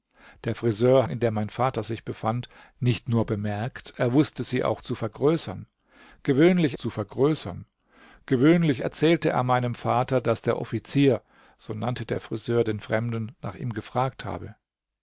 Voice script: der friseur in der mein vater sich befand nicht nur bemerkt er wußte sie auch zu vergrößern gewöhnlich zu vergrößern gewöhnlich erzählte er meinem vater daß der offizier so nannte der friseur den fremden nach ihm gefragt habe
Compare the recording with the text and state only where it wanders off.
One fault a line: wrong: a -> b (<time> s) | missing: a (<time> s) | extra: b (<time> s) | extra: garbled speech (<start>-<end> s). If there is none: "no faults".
no faults